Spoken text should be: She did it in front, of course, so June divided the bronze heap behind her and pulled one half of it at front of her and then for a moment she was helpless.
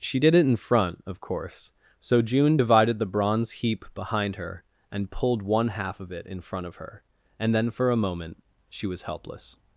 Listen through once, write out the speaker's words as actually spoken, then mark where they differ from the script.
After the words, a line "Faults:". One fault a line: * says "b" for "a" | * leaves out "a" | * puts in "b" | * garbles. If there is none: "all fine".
She did it in front, of course, so June divided the bronze heap behind her and pulled one half of it in front of her and then for a moment she was helpless.
Faults:
* says "in" for "at"